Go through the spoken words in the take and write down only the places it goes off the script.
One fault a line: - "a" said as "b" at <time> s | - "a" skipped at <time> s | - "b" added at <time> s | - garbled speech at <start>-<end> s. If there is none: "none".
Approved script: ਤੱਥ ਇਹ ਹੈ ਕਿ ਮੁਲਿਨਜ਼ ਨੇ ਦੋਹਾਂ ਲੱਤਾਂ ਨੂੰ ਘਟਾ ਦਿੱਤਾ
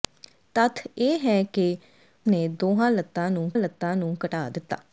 - "ਮੁਲਿਨਜ਼" skipped at 1.8 s
- "ਲੱਤਾਂ ਨੂੰ" added at 3.6 s